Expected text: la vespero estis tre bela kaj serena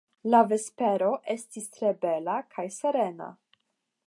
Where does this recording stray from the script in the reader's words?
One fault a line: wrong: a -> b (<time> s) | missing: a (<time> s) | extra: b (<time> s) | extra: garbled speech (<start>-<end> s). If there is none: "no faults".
no faults